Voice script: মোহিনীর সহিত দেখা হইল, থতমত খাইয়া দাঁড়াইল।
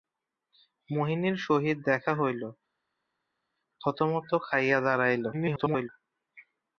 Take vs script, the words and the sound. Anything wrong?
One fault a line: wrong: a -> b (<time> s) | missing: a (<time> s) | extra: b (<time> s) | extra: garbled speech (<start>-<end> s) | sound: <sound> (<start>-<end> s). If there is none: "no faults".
extra: garbled speech (5.3-5.9 s)